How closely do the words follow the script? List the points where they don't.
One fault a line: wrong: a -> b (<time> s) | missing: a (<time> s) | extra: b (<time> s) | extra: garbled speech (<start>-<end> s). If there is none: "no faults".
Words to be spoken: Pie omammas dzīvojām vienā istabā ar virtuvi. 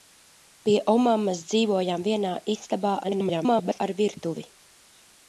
extra: garbled speech (3.0-3.8 s)